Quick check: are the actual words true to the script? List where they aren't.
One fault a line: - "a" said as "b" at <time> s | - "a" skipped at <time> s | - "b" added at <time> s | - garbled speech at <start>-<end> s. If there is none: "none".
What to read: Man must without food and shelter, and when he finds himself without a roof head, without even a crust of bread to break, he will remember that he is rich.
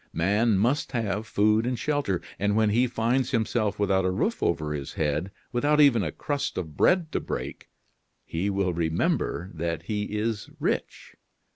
- "without" said as "have" at 0.9 s
- "over his" added at 4.4 s